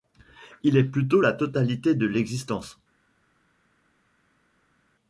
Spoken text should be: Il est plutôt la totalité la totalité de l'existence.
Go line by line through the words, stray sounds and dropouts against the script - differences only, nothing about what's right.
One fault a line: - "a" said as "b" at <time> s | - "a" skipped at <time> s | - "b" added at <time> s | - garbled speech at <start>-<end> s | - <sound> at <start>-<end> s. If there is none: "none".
- "la totalité" skipped at 1.9 s